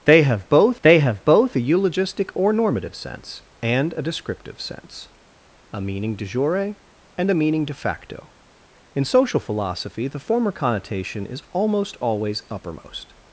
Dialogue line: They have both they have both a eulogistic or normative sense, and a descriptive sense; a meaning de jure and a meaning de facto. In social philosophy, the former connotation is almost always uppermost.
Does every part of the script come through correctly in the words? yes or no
yes